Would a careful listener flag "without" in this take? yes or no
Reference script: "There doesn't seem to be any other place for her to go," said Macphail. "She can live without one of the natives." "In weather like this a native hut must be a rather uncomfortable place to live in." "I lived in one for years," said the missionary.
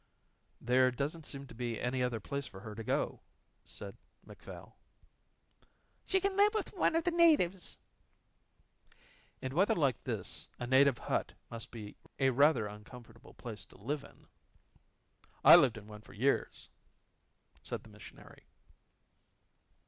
yes